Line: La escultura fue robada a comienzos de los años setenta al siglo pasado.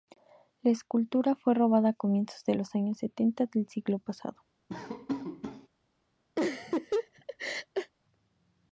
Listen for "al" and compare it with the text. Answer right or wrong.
wrong